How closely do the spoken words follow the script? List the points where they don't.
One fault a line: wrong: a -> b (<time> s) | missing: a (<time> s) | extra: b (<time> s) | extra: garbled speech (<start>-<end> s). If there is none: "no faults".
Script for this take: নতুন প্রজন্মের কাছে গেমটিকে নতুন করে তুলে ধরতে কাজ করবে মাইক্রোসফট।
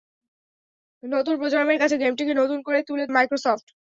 missing: ধরতে কাজ করবে (3.0 s)